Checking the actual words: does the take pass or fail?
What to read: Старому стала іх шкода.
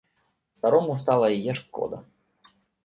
fail